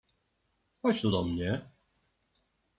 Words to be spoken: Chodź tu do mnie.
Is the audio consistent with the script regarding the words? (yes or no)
yes